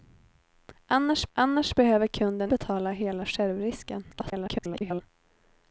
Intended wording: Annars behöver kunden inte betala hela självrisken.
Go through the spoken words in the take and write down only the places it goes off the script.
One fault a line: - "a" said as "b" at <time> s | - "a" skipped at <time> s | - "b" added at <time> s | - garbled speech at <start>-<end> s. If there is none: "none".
- "annars" added at 1.3 s
- "inte" skipped at 2.5 s
- garbled speech at 4.1-5.0 s